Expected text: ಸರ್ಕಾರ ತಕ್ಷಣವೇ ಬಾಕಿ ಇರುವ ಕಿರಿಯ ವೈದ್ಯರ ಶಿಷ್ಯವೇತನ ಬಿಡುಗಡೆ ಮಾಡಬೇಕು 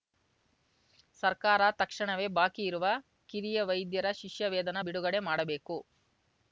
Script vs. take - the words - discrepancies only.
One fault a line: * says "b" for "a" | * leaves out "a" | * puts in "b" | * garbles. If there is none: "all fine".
all fine